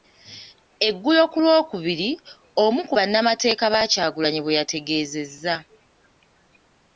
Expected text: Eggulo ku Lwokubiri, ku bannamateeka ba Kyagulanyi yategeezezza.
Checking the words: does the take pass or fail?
fail